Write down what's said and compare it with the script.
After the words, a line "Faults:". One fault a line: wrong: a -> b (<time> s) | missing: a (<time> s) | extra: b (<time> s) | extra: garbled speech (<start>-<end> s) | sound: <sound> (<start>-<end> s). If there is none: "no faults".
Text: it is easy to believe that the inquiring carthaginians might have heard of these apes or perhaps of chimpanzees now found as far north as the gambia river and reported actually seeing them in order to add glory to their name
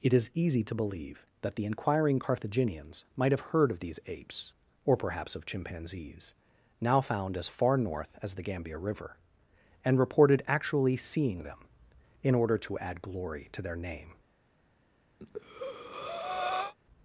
it is easy to believe that the inquiring carthaginians might have heard of these apes or perhaps of chimpanzees now found as far north as the gambia river and reported actually seeing them in order to add glory to their name
Faults:
sound: breath (15.2-16.7 s)